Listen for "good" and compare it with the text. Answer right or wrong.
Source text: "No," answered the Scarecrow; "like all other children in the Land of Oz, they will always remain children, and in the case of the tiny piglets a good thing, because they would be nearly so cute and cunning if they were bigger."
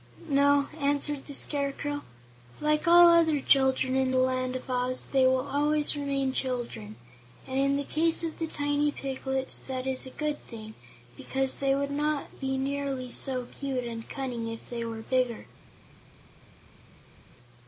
right